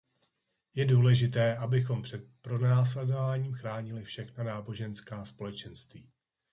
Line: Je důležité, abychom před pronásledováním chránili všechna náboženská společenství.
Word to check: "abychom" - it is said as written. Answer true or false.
true